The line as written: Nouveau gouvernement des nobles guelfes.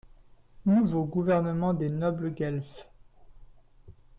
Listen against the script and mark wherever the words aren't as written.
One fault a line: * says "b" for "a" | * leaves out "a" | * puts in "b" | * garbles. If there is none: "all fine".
all fine